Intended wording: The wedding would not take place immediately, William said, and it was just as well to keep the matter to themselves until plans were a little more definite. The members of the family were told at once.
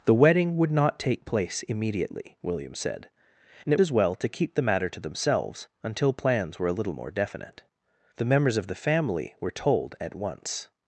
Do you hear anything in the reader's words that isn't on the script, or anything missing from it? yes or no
yes